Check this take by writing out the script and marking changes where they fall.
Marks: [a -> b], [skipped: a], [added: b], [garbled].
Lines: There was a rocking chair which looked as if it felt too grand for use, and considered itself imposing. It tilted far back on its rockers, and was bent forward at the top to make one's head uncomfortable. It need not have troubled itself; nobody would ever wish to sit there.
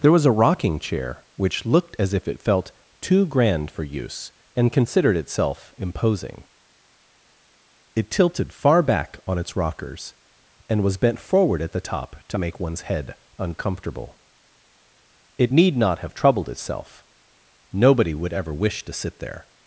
There was a rocking chair which looked as if it felt too grand for use, and considered itself imposing. It tilted far back on its rockers, and was bent forward at the top to make one's head uncomfortable. It need not have troubled itself; nobody would ever wish to sit there.